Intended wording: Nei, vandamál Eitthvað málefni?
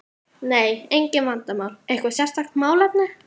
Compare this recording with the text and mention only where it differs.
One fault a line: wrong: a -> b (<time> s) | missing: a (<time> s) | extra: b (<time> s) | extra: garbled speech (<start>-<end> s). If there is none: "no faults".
extra: engin (1.0 s)
extra: sérstakt (2.2 s)